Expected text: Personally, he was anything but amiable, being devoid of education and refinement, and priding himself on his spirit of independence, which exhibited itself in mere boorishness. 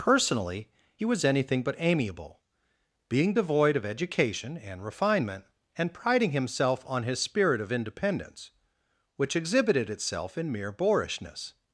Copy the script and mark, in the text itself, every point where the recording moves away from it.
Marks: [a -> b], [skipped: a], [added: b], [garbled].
Personally, he was anything but amiable, being devoid of education and refinement, and priding himself on his spirit of independence, which exhibited itself in mere boorishness.